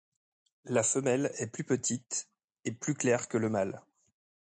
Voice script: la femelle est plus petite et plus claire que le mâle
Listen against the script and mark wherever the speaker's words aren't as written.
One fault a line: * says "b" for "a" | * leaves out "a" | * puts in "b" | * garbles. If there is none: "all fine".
all fine